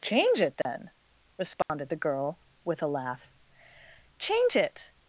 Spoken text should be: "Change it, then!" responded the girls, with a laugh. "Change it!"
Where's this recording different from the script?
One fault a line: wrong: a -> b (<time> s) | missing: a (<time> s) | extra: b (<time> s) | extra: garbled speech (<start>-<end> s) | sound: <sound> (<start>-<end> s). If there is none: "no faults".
sound: dropout (0.6-0.7 s)
sound: dropout (1.6-1.7 s)
wrong: girls -> girl (2.0 s)